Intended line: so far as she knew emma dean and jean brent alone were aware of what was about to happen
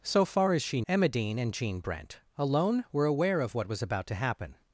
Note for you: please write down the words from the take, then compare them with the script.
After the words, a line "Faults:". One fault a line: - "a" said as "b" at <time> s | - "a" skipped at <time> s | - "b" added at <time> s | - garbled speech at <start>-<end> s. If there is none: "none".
so far as she emma dean and jean brent alone were aware of what was about to happen
Faults:
- "knew" skipped at 0.8 s